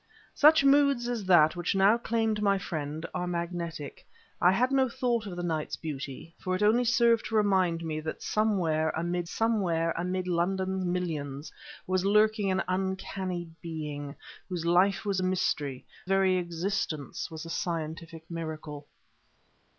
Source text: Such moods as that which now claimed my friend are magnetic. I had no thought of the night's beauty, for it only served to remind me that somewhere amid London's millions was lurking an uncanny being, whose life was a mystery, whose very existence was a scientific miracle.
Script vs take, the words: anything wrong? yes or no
yes